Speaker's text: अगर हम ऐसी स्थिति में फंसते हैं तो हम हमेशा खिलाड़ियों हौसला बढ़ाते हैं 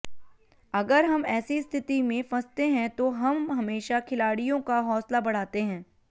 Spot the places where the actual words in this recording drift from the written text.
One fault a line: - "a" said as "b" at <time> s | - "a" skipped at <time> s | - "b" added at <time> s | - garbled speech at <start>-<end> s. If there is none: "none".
- "का" added at 4.6 s